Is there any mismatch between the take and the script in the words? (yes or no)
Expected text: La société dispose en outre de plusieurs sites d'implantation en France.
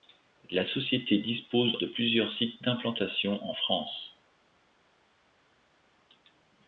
yes